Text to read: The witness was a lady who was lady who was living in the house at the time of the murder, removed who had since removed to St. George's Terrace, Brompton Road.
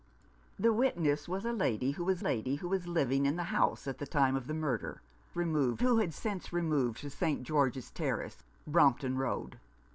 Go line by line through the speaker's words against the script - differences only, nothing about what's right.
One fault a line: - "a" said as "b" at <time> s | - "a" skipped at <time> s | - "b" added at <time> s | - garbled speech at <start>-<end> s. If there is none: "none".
none